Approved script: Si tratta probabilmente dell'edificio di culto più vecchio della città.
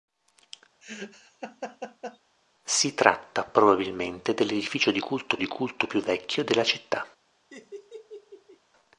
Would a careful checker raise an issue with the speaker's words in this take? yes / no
yes